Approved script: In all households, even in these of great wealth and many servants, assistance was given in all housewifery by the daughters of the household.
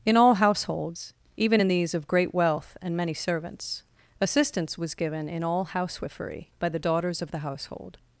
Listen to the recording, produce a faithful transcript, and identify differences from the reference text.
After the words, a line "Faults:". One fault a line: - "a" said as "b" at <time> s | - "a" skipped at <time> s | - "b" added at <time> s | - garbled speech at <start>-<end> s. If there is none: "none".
In all households, even in these of great wealth and many servants, assistance was given in all housewifery by the daughters of the household.
Faults:
none